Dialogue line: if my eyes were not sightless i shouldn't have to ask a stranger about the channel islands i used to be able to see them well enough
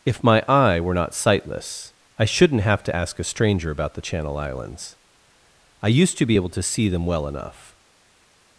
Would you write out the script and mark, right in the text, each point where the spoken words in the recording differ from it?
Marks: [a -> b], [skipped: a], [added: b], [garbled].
if my [eyes -> eye] were not sightless i shouldn't have to ask a stranger about the channel islands i used to be able to see them well enough